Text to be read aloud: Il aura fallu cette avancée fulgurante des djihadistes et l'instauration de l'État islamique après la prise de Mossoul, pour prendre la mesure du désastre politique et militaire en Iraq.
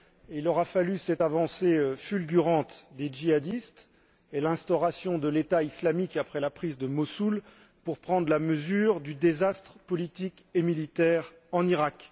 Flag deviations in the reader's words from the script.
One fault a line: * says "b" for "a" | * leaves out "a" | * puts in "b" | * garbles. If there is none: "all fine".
all fine